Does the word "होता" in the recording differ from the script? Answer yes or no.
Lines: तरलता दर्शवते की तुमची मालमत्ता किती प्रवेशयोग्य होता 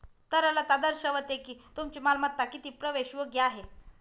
yes